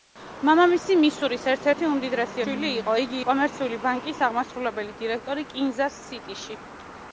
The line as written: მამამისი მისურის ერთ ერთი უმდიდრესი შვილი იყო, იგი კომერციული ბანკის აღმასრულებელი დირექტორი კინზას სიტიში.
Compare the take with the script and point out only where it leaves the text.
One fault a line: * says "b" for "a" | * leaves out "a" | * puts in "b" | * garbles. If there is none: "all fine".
all fine